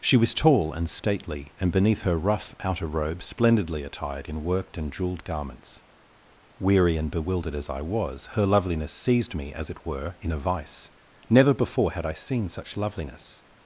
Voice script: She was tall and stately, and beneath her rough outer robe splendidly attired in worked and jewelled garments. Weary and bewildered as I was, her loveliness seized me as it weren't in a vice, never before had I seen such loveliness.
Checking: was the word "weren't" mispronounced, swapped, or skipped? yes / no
yes